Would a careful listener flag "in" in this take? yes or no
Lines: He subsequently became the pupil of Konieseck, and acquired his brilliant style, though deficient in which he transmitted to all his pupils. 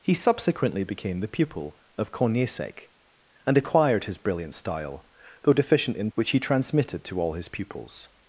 no